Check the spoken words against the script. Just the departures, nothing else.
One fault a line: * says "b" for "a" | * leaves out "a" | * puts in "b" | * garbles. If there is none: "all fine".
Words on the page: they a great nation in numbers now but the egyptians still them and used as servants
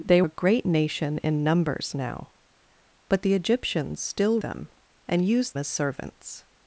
all fine